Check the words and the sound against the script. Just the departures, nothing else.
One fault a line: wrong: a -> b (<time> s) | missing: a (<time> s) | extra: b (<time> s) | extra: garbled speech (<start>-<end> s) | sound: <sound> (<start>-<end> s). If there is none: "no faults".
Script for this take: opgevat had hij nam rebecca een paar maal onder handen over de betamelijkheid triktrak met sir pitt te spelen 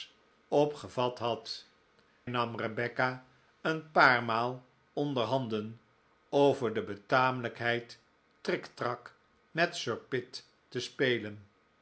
missing: hij (1.6 s)